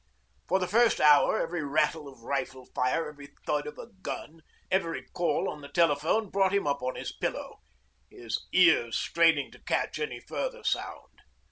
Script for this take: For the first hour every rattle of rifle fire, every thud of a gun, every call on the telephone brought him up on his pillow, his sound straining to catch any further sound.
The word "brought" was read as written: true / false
true